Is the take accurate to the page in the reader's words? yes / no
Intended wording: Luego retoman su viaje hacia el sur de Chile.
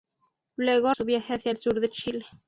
no